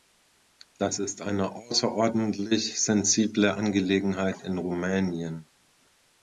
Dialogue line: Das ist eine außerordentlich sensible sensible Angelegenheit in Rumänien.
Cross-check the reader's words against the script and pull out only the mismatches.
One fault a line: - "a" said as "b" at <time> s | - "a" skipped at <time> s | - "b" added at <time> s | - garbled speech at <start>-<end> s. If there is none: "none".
- "sensible" skipped at 3.5 s